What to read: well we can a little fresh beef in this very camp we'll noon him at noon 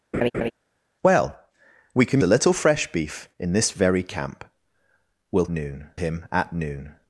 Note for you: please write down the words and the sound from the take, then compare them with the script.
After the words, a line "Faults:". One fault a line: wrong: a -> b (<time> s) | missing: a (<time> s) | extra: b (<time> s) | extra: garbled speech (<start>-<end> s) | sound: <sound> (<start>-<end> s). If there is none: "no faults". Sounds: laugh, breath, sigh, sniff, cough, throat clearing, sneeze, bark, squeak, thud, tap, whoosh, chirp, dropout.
well we can a little fresh beef in this very camp we'll noon him at noon
Faults:
sound: laugh (0.1-0.5 s)